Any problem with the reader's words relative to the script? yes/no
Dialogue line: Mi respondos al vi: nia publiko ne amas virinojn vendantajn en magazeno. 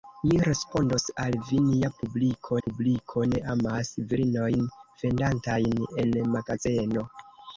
yes